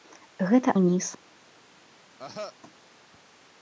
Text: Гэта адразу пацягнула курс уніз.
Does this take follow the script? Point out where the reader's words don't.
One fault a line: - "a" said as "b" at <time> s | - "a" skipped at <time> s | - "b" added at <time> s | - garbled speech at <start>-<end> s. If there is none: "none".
- "адразу пацягнула курс" skipped at 0.7 s